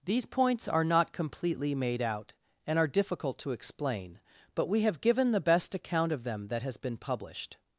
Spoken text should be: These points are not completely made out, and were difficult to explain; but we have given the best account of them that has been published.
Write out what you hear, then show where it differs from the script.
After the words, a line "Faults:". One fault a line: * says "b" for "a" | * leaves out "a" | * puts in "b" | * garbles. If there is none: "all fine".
These points are not completely made out, and are difficult to explain; but we have given the best account of them that has been published.
Faults:
* says "are" for "were"